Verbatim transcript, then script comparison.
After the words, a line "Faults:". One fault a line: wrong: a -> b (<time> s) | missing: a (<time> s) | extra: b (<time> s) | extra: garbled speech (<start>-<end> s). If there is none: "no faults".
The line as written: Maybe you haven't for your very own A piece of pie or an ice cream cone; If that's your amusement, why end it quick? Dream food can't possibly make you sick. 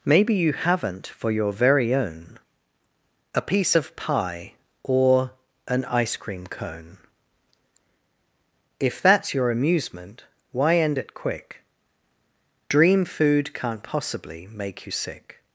Maybe you haven't for your very own A piece of pie or an ice cream cone; If that's your amusement, why end it quick? Dream food can't possibly make you sick.
Faults:
no faults